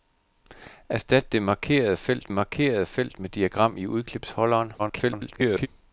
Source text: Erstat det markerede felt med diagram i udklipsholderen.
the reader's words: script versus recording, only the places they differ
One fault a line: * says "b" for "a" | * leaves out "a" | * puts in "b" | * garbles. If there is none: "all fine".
* puts in "markerede felt"
* garbles